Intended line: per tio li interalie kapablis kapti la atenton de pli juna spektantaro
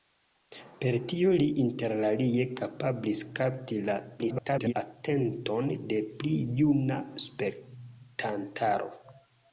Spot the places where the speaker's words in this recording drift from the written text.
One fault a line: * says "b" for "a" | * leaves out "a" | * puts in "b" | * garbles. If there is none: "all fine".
* garbles